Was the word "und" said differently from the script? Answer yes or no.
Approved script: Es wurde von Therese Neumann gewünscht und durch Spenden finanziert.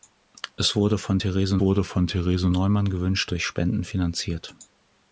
yes